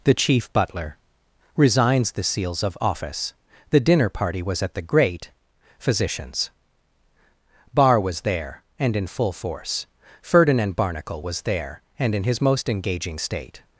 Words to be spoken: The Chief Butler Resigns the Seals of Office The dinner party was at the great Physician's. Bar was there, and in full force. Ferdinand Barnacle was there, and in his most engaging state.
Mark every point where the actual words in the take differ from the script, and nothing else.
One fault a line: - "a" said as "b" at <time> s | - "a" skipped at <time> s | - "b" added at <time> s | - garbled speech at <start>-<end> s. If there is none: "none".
none